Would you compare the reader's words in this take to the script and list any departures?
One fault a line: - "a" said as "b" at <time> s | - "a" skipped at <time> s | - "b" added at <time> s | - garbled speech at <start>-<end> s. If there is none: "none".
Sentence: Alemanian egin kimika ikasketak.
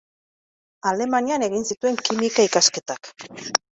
- "zituen" added at 1.7 s